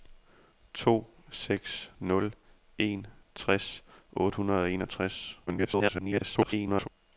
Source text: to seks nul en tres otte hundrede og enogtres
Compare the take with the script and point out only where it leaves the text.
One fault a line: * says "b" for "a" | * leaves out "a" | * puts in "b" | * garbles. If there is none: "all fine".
* garbles